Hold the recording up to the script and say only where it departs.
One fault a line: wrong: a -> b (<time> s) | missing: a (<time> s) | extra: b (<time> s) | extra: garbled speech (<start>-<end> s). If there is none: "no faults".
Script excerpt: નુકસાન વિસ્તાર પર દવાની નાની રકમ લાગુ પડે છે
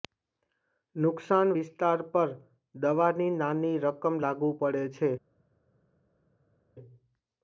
no faults